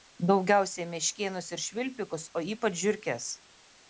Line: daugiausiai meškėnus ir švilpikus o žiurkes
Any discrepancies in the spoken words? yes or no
yes